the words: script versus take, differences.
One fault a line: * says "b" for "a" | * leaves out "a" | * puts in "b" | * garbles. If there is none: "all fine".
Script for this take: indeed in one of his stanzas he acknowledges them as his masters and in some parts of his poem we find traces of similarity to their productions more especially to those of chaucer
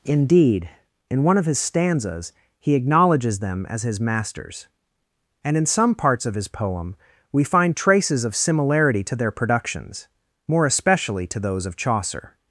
all fine